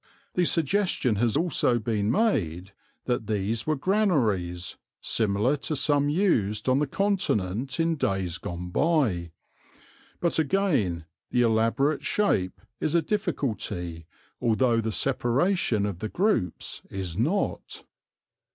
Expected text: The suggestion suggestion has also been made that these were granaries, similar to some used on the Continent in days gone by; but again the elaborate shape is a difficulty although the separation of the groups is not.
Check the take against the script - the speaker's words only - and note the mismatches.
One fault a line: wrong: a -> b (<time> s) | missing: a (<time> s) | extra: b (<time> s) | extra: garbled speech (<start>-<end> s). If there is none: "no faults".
missing: suggestion (1.2 s)